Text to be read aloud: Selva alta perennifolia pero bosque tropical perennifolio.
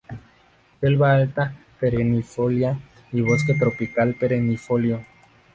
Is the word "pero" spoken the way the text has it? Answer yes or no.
no